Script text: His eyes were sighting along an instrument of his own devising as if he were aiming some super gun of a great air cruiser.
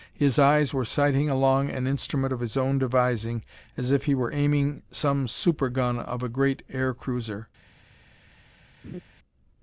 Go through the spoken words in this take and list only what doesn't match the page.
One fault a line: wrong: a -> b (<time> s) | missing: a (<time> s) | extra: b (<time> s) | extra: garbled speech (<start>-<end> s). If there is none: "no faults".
no faults